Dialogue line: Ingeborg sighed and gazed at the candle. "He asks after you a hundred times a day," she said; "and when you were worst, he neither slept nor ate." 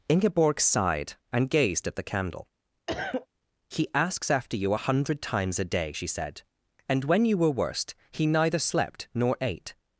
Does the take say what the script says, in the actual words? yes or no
yes